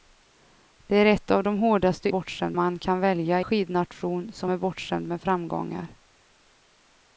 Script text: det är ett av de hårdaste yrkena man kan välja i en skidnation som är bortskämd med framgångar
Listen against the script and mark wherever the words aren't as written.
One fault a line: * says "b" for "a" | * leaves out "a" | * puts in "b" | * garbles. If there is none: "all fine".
* says "bortskämd" for "yrkena"
* leaves out "i en"